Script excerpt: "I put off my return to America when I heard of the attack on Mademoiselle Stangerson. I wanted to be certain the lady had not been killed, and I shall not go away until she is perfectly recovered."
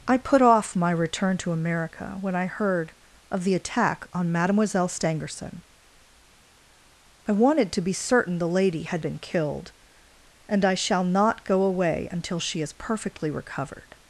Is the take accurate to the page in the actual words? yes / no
no